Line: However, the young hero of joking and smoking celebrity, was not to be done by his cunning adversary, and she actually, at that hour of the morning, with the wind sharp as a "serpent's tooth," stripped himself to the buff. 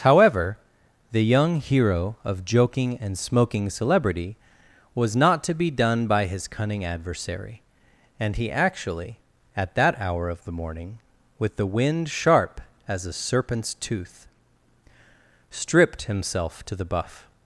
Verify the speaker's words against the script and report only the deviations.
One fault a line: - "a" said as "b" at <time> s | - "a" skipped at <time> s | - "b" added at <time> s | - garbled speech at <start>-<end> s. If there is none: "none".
- "she" said as "he" at 8.3 s